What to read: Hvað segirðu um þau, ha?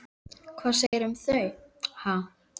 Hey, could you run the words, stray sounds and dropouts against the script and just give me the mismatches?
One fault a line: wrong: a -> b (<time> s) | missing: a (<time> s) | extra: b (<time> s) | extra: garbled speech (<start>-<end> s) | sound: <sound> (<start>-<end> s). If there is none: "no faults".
sound: dropout (0.9-0.9 s)